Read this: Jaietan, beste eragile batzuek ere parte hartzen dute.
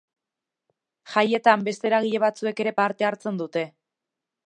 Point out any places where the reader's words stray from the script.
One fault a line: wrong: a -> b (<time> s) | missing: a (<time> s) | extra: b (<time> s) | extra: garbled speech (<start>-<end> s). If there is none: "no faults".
no faults